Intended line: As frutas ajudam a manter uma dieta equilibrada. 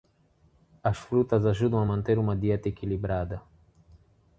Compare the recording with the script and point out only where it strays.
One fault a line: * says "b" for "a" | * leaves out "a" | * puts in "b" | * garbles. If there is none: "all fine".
all fine